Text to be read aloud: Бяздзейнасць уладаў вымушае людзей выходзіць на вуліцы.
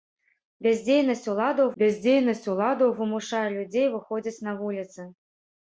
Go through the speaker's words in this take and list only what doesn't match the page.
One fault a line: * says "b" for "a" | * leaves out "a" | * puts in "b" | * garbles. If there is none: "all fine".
* puts in "бяздзейнасць уладаў"